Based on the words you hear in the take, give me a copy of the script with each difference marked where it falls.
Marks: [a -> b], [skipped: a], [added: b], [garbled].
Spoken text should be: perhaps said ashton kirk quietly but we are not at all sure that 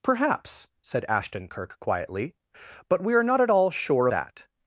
perhaps said ashton kirk quietly but we are not at all sure that